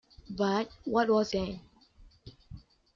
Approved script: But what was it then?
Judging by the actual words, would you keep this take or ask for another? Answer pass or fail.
fail